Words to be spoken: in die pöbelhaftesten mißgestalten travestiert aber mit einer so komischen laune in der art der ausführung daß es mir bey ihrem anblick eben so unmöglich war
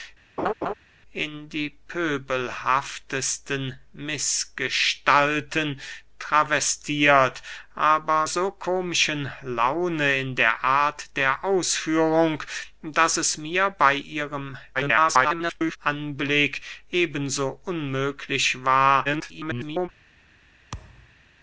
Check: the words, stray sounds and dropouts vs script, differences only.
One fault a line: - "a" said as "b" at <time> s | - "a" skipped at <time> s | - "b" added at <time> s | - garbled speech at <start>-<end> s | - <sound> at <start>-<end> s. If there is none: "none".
- laugh at 0.4-0.7 s
- "mit einer" skipped at 8.3 s
- garbled speech at 14.7-15.8 s
- garbled speech at 19.0-19.9 s
- thud at 20.7-21.2 s